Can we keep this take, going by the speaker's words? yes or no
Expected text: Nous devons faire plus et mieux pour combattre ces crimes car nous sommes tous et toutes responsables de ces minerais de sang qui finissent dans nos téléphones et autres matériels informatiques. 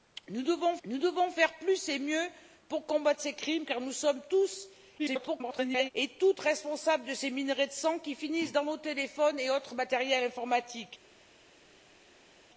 no